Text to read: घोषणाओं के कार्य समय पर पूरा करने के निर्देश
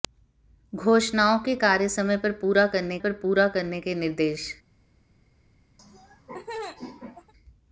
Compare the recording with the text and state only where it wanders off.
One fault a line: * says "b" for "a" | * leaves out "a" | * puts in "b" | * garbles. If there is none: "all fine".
* puts in "पर पूरा करने"